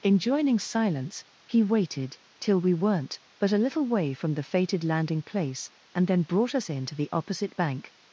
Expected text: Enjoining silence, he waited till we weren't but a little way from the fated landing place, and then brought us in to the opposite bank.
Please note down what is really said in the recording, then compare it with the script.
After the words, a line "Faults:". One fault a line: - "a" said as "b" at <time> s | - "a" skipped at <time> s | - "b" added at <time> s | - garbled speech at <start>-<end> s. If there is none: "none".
Enjoining silence, he waited till we weren't but a little way from the fated landing place, and then brought us in to the opposite bank.
Faults:
none